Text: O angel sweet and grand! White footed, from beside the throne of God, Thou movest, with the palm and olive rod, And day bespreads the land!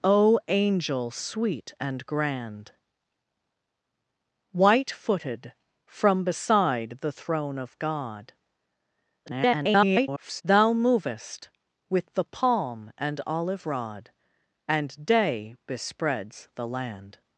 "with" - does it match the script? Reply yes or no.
yes